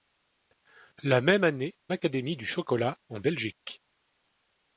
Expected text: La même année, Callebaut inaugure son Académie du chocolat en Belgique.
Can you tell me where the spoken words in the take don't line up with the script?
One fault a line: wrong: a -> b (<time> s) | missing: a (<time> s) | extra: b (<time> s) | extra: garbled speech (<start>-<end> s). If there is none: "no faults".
missing: Callebaut inaugure son (1.8 s)